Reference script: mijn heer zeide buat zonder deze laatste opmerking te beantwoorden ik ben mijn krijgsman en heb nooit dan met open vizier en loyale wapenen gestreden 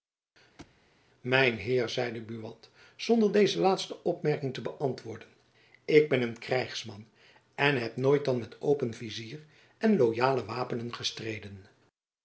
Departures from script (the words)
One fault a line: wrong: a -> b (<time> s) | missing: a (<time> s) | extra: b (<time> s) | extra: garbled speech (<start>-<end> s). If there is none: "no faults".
wrong: mijn -> een (6.2 s)